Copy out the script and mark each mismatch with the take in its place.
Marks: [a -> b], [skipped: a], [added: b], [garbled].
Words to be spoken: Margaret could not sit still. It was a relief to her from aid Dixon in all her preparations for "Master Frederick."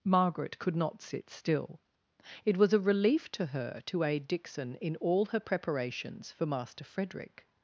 Margaret could not sit still. It was a relief to her [from -> to] aid Dixon in all her preparations for "Master Frederick."